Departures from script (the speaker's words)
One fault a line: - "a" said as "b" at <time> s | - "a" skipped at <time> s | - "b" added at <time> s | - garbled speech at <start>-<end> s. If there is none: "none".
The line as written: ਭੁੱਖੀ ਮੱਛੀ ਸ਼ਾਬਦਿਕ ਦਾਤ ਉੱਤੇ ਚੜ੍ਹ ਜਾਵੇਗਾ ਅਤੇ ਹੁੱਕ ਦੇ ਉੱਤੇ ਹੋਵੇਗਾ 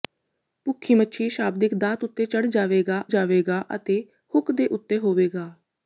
- "ਜਾਵੇਗਾ" added at 3.1 s